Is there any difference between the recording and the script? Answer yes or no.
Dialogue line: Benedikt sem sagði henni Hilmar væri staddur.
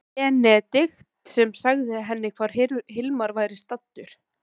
yes